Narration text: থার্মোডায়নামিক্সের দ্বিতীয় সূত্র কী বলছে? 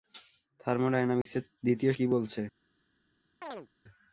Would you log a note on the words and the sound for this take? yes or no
yes